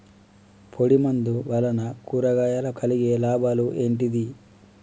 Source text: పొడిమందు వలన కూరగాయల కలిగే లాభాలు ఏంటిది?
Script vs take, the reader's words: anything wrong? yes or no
no